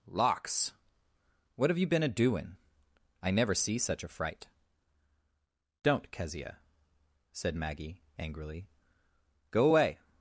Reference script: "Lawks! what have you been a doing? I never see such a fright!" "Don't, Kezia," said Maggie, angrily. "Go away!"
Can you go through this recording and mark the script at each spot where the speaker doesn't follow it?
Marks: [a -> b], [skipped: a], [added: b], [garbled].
"Lawks! what have you been a doing? I never see such a fright!" "Don't, Kezia," said Maggie, angrily. "Go away!"